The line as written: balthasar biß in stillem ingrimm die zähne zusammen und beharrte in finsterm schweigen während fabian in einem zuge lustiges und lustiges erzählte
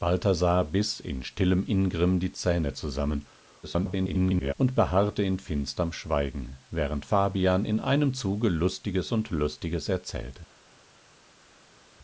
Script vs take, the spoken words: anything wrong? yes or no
yes